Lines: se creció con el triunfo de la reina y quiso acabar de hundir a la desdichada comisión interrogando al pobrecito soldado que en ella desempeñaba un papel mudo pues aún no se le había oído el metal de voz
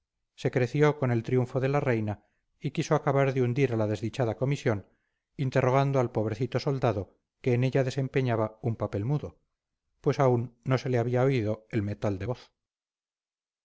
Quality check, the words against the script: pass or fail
pass